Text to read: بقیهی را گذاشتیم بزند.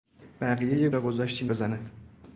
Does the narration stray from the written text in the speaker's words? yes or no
no